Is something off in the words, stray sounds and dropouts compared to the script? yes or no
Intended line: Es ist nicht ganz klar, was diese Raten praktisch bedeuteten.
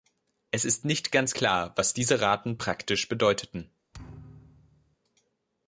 yes